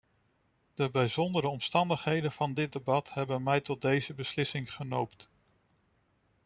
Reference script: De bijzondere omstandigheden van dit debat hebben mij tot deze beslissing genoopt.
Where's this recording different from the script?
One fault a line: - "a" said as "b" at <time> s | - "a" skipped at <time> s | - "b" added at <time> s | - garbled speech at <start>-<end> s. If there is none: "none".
none